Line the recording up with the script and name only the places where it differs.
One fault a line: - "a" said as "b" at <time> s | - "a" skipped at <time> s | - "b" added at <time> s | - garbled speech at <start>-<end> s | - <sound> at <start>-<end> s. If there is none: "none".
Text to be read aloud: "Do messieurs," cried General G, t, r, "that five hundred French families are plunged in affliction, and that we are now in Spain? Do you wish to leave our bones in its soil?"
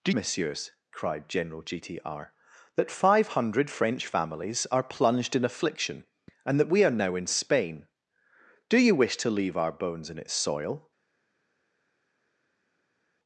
none